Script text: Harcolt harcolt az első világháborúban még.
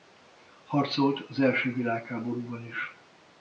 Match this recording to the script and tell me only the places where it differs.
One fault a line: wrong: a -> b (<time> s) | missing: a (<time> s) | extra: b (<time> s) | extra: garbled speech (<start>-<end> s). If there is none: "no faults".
missing: harcolt (1.2 s)
wrong: még -> is (2.7 s)